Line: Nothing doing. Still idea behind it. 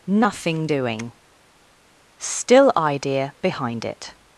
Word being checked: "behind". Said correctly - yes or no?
yes